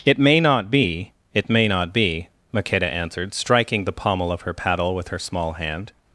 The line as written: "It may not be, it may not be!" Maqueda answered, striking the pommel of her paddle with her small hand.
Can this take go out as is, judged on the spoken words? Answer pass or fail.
pass